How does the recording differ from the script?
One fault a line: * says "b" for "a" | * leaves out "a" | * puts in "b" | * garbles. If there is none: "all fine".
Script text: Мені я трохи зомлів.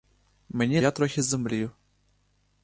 all fine